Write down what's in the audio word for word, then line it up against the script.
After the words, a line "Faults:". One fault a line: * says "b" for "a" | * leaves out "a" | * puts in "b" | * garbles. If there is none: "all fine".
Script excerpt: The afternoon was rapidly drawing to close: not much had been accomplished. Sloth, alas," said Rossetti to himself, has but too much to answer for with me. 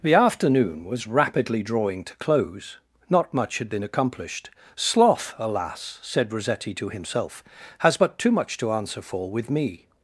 The afternoon was rapidly drawing to close: not much had been accomplished. Sloth, alas," said Rossetti to himself, has but too much to answer for with me.
Faults:
all fine